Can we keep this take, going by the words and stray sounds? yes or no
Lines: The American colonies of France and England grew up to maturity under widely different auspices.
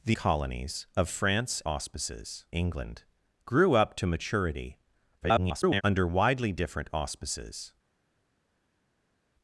no